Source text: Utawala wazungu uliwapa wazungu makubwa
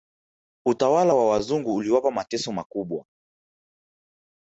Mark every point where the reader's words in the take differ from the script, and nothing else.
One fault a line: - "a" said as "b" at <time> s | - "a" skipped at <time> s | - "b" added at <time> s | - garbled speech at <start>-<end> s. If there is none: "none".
- "wa" added at 1.1 s
- "wazungu" said as "mateso" at 2.1 s